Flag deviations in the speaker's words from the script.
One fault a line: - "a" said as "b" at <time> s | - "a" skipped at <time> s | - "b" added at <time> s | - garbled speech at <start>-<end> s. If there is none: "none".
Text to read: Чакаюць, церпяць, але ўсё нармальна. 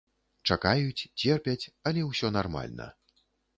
none